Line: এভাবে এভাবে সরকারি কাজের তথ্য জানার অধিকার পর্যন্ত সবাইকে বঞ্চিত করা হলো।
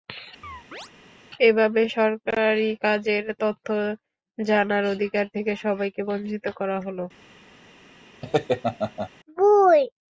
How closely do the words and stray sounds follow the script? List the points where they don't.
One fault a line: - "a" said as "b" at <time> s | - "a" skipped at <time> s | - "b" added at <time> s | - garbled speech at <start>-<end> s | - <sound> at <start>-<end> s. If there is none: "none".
- chirp at 0.4-0.9 s
- "এভাবে" skipped at 1.8 s
- "পর্যন্ত" said as "থেকে" at 5.3 s
- laugh at 8.2-9.1 s